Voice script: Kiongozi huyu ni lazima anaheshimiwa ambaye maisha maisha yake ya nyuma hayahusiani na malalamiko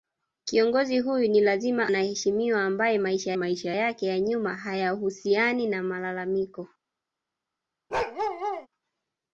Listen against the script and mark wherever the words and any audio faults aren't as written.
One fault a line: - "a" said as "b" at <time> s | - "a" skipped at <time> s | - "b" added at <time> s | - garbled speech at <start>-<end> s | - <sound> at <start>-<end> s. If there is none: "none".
- bark at 7.9-8.7 s